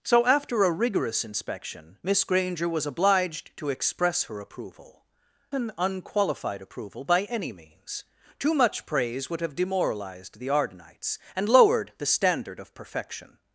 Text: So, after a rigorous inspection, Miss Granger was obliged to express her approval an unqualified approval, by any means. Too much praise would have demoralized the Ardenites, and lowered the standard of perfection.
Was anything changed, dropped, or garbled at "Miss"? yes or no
no